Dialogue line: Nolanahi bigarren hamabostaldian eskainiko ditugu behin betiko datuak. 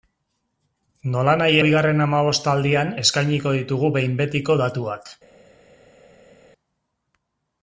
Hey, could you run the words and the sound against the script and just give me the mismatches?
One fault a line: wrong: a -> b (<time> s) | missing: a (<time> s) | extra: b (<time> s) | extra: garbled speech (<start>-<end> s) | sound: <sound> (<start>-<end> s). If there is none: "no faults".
no faults